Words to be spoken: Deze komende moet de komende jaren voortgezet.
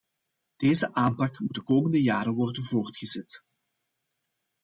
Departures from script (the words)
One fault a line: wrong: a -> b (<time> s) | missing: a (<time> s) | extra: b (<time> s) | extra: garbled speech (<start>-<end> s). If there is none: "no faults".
wrong: komende -> aanpak (0.9 s)
extra: worden (2.3 s)